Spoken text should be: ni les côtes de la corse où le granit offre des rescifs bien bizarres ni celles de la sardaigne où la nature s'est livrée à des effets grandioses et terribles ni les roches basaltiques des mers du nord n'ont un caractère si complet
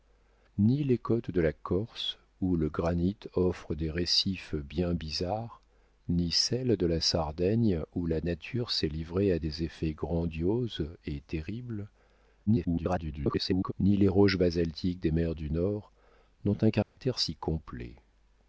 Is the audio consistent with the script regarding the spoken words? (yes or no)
no